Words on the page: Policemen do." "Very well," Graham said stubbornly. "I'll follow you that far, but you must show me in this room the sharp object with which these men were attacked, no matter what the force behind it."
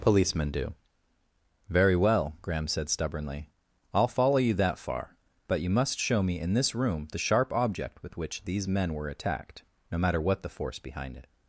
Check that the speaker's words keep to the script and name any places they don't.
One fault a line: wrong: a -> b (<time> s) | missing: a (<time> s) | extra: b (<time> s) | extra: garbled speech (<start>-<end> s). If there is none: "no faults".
no faults